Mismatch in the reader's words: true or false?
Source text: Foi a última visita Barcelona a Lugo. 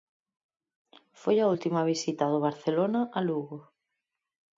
true